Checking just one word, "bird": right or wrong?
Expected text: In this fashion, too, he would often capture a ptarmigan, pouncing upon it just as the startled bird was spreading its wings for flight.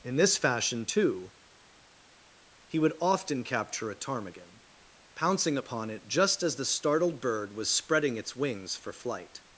right